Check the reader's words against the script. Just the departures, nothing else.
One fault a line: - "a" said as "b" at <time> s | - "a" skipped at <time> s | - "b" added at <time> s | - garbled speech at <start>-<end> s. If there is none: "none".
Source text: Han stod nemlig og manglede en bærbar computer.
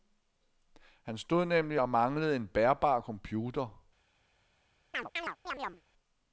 none